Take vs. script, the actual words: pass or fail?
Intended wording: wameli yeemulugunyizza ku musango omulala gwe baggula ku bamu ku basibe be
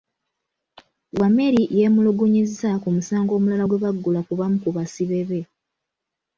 pass